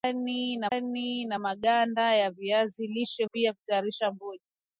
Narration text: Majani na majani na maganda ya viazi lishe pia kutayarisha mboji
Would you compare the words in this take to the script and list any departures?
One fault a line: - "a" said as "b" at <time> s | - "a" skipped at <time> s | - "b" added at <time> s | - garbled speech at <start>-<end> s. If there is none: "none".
none